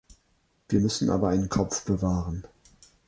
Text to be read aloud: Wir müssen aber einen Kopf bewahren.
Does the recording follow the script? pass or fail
pass